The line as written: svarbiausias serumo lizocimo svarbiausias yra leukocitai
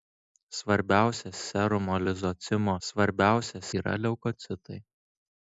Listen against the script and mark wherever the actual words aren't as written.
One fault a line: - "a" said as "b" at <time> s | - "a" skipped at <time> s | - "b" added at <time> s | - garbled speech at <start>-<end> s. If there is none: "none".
none